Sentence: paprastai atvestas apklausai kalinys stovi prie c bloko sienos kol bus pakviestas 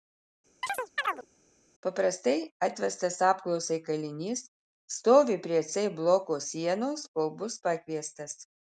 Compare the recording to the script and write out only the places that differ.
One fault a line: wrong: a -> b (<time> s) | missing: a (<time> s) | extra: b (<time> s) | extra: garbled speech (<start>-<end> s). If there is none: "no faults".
no faults